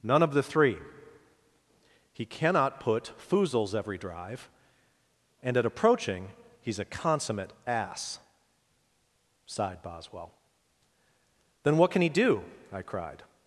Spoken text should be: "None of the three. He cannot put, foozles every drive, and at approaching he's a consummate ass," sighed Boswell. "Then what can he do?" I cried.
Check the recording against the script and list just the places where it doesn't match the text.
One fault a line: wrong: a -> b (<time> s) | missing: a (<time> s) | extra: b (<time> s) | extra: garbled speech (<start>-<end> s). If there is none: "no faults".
no faults